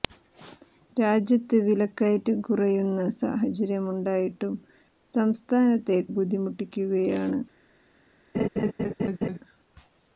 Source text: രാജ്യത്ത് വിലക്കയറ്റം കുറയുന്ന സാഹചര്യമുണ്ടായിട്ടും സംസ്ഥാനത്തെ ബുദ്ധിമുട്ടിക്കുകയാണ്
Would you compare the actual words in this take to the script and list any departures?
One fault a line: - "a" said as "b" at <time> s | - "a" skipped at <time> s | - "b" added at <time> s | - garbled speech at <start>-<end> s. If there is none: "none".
none